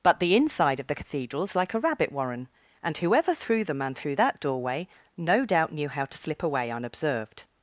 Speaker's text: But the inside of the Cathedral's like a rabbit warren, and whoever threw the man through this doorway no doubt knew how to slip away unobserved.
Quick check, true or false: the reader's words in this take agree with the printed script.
false